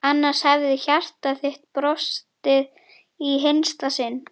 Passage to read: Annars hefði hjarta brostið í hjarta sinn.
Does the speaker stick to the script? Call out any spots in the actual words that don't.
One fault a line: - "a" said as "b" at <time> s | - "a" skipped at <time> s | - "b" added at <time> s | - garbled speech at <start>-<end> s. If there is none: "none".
- "þitt" added at 1.4 s
- "hjarta" said as "hinsta" at 3.5 s